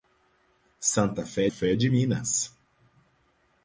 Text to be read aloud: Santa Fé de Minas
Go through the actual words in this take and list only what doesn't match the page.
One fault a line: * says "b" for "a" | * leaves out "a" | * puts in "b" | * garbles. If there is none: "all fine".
* puts in "Fé"